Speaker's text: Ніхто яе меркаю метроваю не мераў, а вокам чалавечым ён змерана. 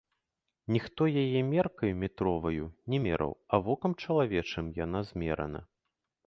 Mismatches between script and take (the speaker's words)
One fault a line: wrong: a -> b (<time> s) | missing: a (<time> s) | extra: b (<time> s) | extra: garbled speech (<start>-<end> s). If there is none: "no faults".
wrong: ён -> яна (4.8 s)